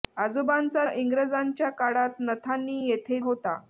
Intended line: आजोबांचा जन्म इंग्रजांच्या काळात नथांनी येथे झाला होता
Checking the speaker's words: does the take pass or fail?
fail